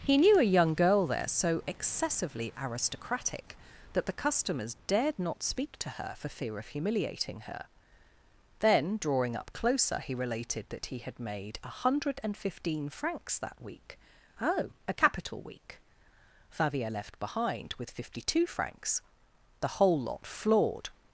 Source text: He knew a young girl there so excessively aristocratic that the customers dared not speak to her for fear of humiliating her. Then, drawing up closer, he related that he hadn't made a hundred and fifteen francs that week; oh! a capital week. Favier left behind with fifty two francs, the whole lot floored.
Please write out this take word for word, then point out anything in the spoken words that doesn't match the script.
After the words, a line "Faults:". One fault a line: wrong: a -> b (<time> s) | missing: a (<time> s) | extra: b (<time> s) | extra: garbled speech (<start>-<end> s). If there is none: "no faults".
He knew a young girl there so excessively aristocratic that the customers dared not speak to her for fear of humiliating her. Then, drawing up closer, he related that he had made a hundred and fifteen francs that week; oh! a capital week. Favier left behind with fifty two francs, the whole lot floored.
Faults:
wrong: hadn't -> had (11.0 s)